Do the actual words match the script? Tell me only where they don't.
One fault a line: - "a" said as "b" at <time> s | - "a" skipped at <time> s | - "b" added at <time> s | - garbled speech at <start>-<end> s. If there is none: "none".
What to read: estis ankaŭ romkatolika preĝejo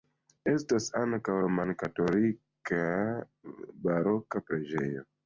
- "estis" said as "estas" at 0.5 s
- "baroka" added at 3.9 s